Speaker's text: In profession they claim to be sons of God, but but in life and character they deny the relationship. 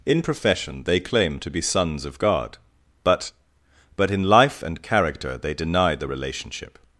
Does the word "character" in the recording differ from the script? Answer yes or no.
no